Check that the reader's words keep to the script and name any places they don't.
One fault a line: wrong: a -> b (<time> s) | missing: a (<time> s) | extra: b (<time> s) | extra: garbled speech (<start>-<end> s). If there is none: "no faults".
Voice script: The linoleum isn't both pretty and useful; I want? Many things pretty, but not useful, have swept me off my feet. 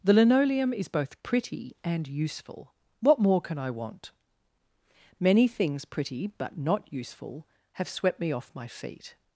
wrong: isn't -> is (0.7 s)
extra: what more can (3.0 s)